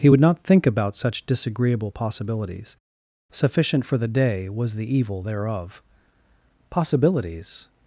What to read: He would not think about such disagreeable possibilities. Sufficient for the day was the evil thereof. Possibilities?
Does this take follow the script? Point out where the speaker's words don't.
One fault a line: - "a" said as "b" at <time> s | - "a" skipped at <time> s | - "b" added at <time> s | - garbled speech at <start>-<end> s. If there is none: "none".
none